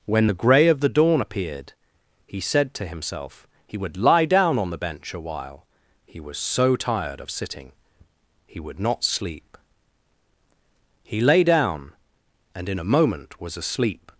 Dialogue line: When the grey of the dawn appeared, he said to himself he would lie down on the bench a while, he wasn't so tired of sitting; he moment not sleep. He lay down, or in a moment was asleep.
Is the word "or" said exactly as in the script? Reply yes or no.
no